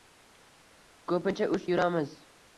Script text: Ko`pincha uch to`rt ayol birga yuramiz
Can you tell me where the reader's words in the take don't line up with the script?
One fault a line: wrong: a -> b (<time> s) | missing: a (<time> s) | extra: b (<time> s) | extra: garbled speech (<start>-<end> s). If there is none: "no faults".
missing: to`rt ayol birga (1.7 s)